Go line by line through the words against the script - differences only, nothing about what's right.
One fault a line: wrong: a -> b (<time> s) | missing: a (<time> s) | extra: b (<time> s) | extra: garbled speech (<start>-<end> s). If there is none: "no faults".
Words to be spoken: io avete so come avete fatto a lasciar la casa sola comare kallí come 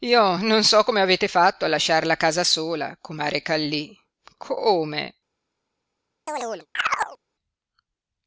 wrong: avete -> non (0.3 s)